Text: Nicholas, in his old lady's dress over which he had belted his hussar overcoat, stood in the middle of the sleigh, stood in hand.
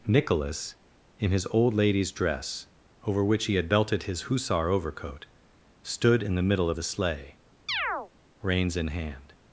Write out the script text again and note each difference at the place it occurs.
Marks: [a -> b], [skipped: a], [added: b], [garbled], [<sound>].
Nicholas, in his old lady's dress over which he had belted his hussar overcoat, stood in the middle of the sleigh, [chirp] [stood -> reins] in hand.